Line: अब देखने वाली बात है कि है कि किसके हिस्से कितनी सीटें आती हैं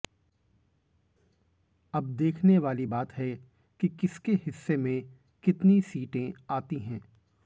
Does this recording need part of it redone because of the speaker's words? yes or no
yes